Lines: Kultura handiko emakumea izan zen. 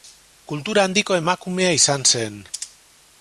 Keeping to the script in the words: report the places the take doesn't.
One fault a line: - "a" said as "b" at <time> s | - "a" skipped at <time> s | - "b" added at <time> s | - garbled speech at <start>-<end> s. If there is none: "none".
none